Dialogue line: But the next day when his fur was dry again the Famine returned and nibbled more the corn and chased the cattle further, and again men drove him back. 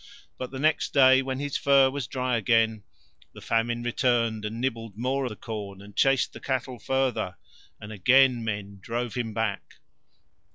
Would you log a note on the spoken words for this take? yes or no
no